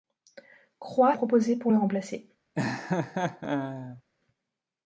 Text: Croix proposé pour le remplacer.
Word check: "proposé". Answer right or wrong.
right